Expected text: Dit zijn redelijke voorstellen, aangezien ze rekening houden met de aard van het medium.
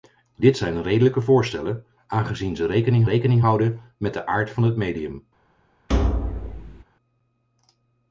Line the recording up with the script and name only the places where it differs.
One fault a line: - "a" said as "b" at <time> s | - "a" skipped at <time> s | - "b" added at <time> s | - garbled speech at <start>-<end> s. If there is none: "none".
- "rekening" added at 3.0 s